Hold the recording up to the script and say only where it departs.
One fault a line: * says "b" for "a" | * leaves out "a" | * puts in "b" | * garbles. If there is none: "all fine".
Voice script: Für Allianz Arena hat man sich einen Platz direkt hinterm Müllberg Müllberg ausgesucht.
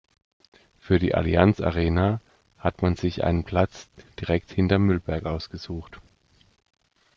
* puts in "die"
* leaves out "Müllberg"